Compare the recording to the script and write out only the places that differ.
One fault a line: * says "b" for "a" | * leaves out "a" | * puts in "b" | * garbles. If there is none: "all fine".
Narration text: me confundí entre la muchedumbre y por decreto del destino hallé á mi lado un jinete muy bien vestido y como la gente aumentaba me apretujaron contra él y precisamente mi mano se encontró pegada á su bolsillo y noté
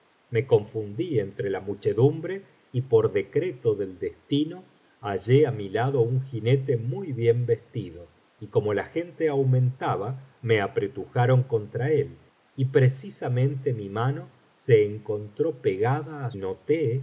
* leaves out "su bolsillo y"